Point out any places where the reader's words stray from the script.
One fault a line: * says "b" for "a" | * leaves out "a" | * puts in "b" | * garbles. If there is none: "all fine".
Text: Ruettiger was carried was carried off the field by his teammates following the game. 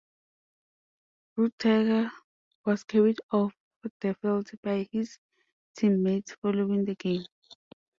* leaves out "was carried"